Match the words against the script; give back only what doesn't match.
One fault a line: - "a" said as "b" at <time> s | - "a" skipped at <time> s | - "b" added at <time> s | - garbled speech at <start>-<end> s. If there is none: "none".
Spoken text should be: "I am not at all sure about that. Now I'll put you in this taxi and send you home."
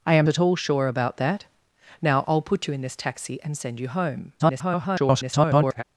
- "not" skipped at 0.3 s
- garbled speech at 4.4-5.8 s